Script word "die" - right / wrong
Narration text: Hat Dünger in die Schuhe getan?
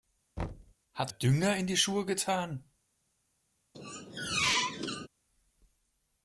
right